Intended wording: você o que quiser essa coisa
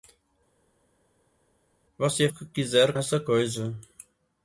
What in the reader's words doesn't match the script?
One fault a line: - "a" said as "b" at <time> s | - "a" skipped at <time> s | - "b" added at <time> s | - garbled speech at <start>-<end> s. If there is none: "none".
none